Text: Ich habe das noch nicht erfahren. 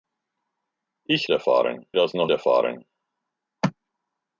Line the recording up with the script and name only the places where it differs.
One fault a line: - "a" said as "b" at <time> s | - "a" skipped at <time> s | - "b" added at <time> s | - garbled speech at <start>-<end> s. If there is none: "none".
- "habe" said as "erfahren" at 1.3 s
- "nicht" skipped at 2.3 s